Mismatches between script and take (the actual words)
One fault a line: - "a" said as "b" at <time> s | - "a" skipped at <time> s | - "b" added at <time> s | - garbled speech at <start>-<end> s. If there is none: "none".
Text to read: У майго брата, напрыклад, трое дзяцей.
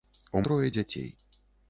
- "майго брата напрыклад" skipped at 0.4 s